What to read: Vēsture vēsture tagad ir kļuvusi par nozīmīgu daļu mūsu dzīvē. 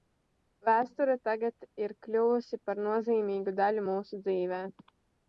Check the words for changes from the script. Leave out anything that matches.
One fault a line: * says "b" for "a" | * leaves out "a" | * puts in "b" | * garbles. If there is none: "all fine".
* leaves out "vēsture"